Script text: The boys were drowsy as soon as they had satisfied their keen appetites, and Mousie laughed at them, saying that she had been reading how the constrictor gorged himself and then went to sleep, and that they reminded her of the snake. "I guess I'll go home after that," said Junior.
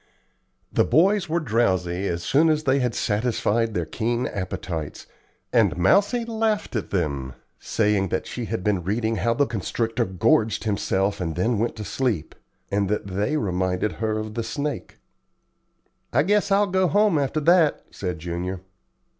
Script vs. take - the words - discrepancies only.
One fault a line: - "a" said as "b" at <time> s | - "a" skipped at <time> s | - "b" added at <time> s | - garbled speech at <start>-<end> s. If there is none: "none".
none